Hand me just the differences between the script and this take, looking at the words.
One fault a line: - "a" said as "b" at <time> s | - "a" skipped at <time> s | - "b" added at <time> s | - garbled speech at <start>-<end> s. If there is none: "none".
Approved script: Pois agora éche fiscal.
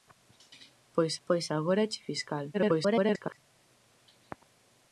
- "pois" added at 1.3 s
- garbled speech at 2.5-3.4 s